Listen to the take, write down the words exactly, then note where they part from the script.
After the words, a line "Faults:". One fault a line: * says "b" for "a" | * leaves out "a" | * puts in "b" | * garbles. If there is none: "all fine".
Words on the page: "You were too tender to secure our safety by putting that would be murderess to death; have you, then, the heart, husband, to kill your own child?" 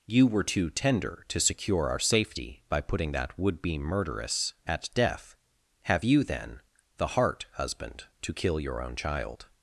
"You were too tender to secure our safety by putting that would be murderess at death; have you, then, the heart, husband, to kill your own child?"
Faults:
* says "at" for "to"